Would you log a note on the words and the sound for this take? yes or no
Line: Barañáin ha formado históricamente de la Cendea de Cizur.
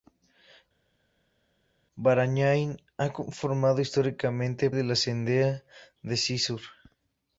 no